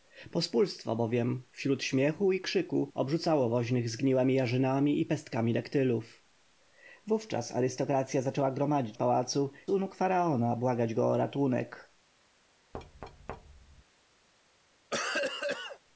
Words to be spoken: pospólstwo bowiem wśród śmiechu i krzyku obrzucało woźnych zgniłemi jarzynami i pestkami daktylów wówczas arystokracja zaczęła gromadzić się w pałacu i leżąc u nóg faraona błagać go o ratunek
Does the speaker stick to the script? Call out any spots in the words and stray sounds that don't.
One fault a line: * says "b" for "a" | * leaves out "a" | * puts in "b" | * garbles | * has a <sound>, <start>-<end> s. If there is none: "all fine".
* leaves out "się"
* leaves out "i leżąc"
* has a thud, 12.7-13.8 s
* has a cough, 14.9-15.8 s